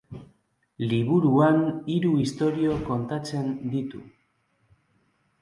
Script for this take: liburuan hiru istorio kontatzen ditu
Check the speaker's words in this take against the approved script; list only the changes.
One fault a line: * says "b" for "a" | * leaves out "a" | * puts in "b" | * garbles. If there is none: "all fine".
all fine